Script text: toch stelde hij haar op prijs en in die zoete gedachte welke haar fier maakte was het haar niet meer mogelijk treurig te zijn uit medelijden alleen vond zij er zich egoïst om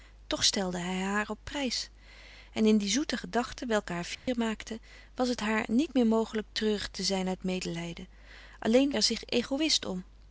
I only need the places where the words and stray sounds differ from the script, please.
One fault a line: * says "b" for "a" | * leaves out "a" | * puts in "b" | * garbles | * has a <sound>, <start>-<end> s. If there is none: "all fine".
* has a dropout, 4.1-4.3 s
* leaves out "vond zij"